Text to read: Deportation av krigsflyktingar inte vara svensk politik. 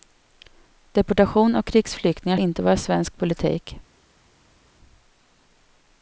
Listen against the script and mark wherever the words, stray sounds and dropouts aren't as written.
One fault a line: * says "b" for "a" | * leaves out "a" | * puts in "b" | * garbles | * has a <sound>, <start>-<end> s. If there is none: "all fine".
all fine